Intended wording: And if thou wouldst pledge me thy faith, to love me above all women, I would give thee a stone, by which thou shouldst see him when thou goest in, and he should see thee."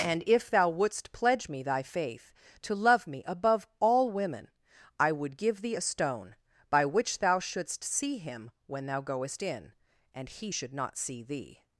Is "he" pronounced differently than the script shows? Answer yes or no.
no